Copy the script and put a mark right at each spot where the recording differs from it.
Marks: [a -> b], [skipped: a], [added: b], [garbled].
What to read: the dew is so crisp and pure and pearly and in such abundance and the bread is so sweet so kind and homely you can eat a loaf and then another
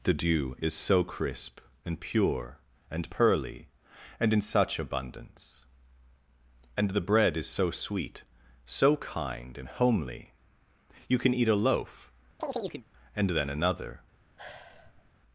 the dew is so crisp and pure and pearly and in such abundance and the bread is so sweet so kind and homely you can eat a loaf and then another